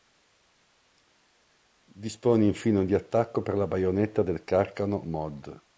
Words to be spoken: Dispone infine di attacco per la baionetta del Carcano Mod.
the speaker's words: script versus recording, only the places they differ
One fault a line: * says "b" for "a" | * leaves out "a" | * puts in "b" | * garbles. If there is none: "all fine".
all fine